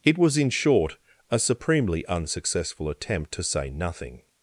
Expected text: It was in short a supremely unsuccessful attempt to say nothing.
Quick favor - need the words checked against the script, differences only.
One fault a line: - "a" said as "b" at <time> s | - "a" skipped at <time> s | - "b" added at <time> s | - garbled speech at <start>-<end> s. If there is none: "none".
none